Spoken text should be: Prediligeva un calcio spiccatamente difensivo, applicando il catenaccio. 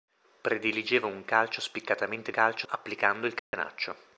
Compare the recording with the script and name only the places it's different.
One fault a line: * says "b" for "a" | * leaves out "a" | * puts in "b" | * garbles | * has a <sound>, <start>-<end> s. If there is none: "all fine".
* says "calcio" for "difensivo"
* has a dropout, 3.4-3.5 s